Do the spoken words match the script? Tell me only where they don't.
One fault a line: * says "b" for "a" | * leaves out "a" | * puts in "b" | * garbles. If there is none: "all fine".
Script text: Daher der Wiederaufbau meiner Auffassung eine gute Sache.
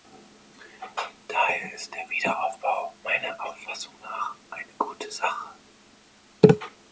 * puts in "ist"
* puts in "nach"